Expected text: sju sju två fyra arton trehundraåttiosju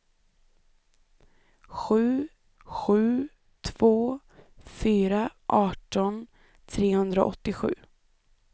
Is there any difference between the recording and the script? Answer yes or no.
no